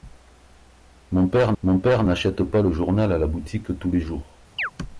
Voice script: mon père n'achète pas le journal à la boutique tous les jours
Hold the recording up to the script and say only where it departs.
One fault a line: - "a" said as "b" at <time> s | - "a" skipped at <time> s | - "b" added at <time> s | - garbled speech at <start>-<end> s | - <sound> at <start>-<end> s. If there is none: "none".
- "mon père" added at 1.6 s
- chirp at 4.6-4.7 s